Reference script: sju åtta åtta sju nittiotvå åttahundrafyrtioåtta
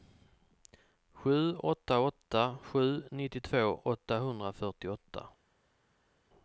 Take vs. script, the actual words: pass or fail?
pass